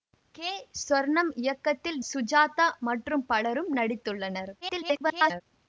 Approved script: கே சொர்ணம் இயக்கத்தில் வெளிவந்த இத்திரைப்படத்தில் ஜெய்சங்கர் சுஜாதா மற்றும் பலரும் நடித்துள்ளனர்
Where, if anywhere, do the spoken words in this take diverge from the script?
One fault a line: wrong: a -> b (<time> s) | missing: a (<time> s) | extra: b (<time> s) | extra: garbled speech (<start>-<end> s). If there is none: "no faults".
missing: வெளிவந்த இத்திரைப்படத்தில் ஜெய்சங்கர் (2.0 s)
extra: garbled speech (4.6-5.4 s)